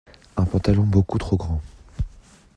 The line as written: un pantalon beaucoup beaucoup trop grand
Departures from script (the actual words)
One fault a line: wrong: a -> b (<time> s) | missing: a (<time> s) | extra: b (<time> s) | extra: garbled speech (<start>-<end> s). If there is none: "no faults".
missing: beaucoup (1.2 s)